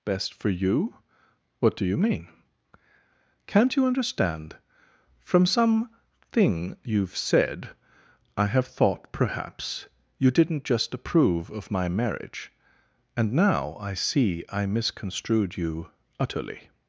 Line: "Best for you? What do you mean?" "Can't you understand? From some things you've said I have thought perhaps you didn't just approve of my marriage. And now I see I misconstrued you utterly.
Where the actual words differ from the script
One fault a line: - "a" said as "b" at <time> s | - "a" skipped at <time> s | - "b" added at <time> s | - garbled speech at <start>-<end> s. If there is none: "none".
- "things" said as "thing" at 6.3 s